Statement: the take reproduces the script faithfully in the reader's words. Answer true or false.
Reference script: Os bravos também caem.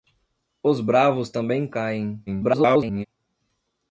false